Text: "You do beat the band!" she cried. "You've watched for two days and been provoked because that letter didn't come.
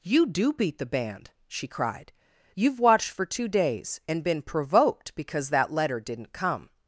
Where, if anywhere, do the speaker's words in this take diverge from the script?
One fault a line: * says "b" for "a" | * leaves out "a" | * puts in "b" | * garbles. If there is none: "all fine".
all fine